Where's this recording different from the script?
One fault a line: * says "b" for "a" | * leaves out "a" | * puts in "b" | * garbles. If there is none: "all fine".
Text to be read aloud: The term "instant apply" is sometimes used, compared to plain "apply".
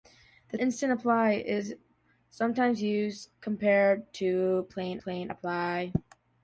* leaves out "term"
* puts in "plain"